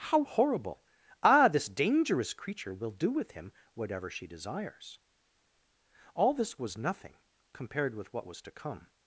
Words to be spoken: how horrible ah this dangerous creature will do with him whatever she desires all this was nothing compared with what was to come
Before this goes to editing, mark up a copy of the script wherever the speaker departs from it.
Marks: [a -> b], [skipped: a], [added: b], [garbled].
how horrible ah this dangerous creature will do with him whatever she desires all this was nothing compared with what was to come